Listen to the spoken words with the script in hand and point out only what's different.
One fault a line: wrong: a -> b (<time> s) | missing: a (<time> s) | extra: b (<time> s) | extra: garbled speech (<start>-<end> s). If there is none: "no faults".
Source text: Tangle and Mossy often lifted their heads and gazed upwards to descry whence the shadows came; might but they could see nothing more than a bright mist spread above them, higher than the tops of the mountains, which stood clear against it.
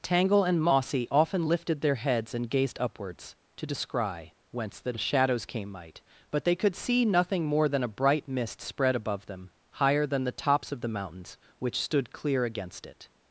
no faults